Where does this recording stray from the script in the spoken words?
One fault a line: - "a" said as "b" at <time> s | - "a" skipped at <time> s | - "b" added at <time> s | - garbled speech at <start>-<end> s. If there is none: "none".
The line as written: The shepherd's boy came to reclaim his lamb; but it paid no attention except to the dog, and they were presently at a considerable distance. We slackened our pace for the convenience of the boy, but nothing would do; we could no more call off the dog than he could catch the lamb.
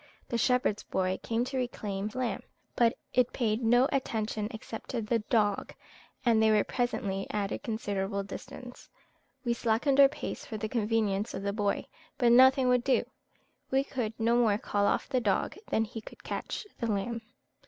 - "his" skipped at 2.1 s